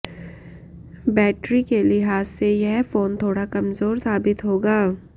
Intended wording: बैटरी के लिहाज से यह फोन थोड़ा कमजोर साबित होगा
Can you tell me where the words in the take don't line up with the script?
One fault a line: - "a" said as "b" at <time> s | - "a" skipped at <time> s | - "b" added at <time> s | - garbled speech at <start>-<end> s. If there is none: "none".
none